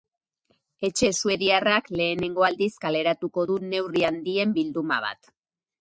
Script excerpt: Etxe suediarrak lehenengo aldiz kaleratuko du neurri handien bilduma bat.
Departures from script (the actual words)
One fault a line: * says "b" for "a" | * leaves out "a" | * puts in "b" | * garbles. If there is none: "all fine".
all fine